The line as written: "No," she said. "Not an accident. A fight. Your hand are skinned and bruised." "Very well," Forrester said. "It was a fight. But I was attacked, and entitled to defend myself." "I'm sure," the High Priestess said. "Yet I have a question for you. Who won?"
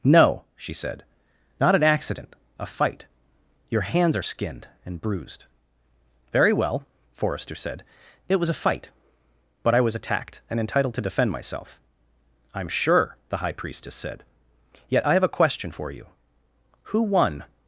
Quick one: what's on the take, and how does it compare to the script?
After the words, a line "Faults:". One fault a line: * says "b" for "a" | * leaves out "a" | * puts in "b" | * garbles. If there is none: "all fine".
"No," she said. "Not an accident. A fight. Your hands are skinned and bruised." "Very well," Forrester said. "It was a fight. But I was attacked, and entitled to defend myself." "I'm sure," the High Priestess said. "Yet I have a question for you. Who won?"
Faults:
* says "hands" for "hand"